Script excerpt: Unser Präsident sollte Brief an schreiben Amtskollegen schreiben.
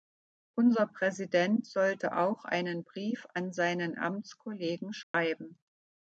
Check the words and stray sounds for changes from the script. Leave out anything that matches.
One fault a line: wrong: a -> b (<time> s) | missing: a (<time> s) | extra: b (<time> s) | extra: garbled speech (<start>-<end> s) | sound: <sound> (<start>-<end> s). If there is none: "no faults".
extra: auch einen (2.2 s)
wrong: schreiben -> seinen (3.5 s)
sound: dropout (5.0-5.1 s)